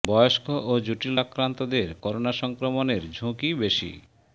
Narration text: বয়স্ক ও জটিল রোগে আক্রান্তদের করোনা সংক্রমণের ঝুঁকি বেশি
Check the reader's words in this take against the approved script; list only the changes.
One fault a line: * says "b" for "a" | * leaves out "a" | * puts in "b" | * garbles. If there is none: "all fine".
* leaves out "রোগে"